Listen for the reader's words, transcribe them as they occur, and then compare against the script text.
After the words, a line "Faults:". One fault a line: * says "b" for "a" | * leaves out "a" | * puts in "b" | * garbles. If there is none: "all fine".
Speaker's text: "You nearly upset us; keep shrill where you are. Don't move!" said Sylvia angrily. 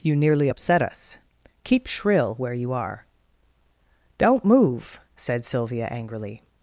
"You nearly upset us; keep shrill where you are. Don't move!" said Sylvia angrily.
Faults:
all fine